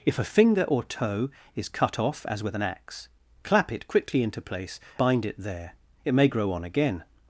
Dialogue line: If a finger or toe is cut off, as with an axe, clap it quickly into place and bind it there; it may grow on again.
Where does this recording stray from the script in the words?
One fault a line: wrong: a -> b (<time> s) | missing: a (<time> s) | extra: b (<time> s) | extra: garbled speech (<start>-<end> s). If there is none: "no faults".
missing: and (4.8 s)